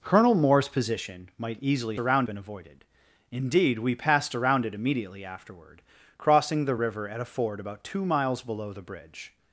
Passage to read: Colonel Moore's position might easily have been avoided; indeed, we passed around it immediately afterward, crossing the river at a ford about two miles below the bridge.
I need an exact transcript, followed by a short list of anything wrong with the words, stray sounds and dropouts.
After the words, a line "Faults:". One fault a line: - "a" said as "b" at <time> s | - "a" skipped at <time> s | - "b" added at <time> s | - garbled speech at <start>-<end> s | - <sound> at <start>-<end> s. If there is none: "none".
Colonel Moore's position might easily around been avoided; indeed, we passed around it immediately afterward, crossing the river at a ford about two miles below the bridge.
Faults:
- "have" said as "around" at 2.0 s